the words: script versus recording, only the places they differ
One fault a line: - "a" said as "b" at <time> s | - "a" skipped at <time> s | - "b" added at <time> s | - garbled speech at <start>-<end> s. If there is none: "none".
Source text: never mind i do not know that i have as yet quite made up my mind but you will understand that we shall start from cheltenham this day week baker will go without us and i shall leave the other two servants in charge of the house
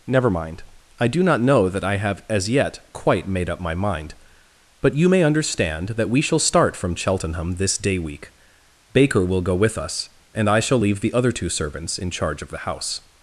- "will" said as "may" at 5.1 s
- "without" said as "with" at 9.6 s